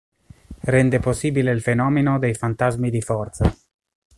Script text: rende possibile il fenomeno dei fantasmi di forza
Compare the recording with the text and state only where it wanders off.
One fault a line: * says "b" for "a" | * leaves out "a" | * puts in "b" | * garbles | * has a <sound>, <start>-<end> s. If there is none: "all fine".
all fine